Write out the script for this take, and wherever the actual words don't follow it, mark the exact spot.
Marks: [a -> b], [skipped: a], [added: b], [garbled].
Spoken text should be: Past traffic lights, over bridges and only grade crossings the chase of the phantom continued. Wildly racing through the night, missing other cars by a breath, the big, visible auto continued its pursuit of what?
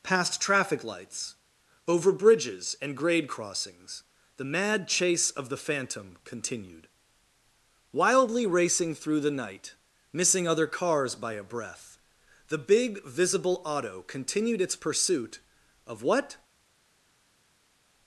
Past traffic lights, over bridges and [skipped: only] grade crossings the [added: mad] chase of the phantom continued. Wildly racing through the night, missing other cars by a breath, the big, visible auto continued its pursuit of what?